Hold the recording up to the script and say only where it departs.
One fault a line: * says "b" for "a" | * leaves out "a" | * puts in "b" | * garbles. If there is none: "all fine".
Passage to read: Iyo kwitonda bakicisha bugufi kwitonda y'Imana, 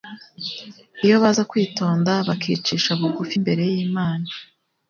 * puts in "baza"
* says "imbere" for "kwitonda"